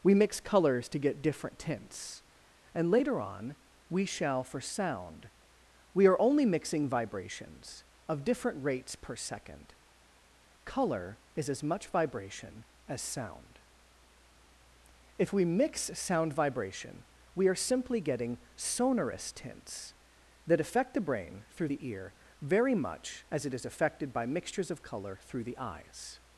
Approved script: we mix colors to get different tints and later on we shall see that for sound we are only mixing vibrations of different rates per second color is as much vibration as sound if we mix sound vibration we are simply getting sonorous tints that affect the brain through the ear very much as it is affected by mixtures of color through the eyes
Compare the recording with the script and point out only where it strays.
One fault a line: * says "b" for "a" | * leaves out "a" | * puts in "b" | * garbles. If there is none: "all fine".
* leaves out "see that"